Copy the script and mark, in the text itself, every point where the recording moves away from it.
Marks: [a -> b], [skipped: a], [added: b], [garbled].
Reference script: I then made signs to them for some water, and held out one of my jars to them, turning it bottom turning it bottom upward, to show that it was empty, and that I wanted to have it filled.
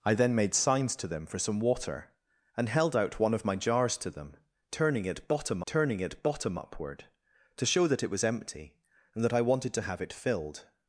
I then made signs to them for some water, and held out one of my jars to them, turning it bottom turning it bottom upward, to show that it was empty, and that I wanted to have it filled.